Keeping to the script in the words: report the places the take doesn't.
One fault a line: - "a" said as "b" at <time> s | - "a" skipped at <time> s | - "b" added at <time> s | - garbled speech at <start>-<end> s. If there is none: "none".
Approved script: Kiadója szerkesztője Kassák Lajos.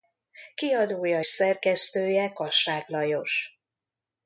none